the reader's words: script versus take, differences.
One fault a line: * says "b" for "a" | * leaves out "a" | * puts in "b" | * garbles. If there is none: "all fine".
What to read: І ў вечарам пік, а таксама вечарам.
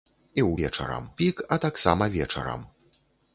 all fine